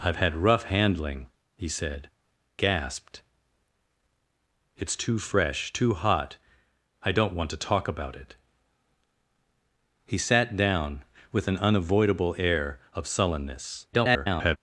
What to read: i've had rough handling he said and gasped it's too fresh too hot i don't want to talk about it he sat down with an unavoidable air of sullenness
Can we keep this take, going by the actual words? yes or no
no